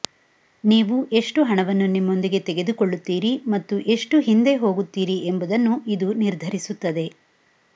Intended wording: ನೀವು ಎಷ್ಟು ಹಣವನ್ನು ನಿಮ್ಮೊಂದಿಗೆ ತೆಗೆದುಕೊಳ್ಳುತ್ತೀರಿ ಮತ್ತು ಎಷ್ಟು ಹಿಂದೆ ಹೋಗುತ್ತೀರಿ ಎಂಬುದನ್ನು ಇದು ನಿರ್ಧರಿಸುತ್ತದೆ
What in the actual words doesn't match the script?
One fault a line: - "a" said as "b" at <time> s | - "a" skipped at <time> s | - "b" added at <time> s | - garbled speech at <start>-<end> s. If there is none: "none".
none